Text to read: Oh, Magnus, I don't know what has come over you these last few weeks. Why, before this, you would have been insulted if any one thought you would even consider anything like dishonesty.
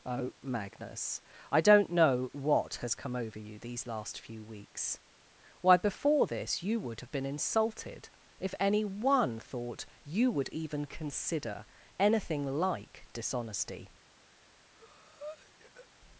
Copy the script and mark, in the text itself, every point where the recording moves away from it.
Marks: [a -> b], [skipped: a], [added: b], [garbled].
Oh, Magnus, I don't know what has come over you these last few weeks. Why, before this, you would have been insulted if any one thought you would even consider anything like dishonesty.